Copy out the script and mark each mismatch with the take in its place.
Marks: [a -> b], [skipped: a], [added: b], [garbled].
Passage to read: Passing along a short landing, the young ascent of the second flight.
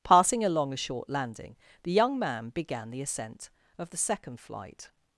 Passing along a short landing, the young [added: man began the] ascent of the second flight.